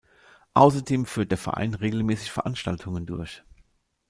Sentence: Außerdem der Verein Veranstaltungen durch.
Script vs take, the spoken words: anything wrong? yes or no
yes